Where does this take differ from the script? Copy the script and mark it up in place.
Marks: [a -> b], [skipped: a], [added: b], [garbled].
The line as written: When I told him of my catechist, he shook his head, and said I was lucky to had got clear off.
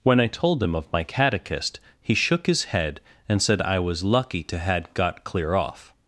When I told him of my catechist, he shook his head, and said I was lucky to had got clear off.